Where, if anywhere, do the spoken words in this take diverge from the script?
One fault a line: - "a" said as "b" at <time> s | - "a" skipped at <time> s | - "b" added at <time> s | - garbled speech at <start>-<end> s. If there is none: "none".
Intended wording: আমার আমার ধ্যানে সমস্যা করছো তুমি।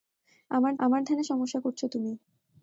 none